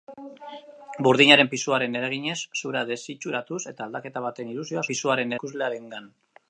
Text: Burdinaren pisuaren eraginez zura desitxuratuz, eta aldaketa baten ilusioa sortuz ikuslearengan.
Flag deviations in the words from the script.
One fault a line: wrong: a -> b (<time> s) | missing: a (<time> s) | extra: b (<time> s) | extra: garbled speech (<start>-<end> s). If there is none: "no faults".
wrong: sortuz -> pisuaren (4.9 s)